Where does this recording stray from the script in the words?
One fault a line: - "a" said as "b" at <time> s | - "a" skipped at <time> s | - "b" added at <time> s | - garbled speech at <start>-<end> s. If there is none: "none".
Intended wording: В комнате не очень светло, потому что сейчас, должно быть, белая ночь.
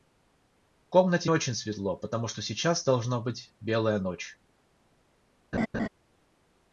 - "не" skipped at 1.3 s